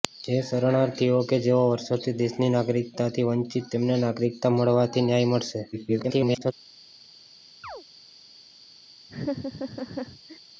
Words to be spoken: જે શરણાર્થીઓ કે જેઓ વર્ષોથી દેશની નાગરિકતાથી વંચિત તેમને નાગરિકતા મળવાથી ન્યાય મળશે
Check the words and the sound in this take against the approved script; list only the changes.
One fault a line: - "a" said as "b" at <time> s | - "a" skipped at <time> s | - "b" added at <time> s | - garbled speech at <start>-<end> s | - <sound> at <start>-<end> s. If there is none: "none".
- garbled speech at 5.7-6.5 s
- chirp at 7.6-7.8 s
- laugh at 9.1-10.4 s